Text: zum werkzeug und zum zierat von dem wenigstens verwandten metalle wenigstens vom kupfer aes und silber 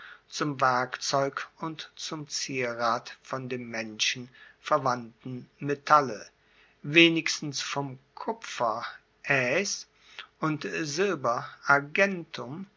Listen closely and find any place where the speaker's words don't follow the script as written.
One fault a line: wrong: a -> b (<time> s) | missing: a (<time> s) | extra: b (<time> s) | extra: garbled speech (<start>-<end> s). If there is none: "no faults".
wrong: wenigstens -> menschen (3.7 s)